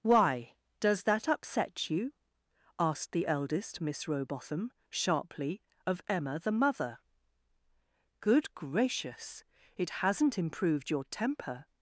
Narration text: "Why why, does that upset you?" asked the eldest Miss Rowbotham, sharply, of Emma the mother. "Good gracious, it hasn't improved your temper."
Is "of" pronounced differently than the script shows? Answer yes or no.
no